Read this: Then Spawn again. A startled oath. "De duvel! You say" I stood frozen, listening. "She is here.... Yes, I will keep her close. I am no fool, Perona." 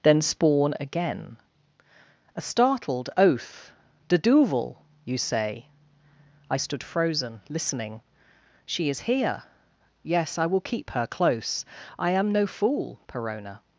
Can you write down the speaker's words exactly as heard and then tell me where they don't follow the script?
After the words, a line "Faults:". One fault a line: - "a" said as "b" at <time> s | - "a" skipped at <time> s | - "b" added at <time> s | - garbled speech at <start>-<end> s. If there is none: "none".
Then Spawn again. A startled oath. "De duvel! You say" I stood frozen, listening. "She is here.... Yes, I will keep her close. I am no fool, Perona."
Faults:
none